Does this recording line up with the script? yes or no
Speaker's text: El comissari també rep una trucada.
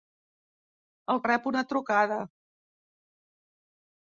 no